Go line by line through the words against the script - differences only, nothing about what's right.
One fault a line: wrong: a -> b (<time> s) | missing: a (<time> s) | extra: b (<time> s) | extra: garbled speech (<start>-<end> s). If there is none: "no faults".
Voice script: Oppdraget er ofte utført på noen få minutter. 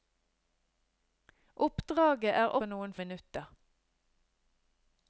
missing: ofte utført (2.5 s)
missing: få (3.0 s)